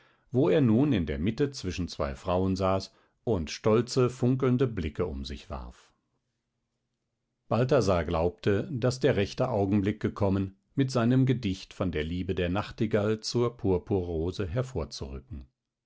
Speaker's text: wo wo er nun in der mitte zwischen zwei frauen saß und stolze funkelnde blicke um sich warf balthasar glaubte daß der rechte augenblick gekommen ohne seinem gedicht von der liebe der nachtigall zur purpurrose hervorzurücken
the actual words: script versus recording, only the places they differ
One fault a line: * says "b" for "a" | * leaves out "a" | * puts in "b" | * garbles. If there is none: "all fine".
* leaves out "wo"
* says "mit" for "ohne"